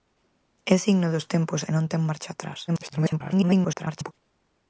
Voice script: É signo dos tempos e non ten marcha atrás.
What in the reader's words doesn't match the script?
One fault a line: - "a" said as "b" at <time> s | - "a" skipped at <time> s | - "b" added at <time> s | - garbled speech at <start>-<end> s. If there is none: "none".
- garbled speech at 2.7-4.1 s